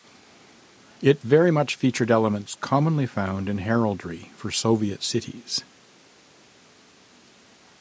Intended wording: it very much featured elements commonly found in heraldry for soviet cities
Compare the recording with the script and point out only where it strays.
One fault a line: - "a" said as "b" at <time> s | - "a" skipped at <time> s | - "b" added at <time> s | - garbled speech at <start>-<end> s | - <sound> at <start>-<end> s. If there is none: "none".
none